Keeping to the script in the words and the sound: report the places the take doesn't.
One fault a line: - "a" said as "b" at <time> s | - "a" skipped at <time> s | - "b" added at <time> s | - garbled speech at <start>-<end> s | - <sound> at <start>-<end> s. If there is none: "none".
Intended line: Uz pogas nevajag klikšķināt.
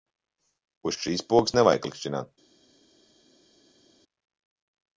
- "šīs" added at 1.0 s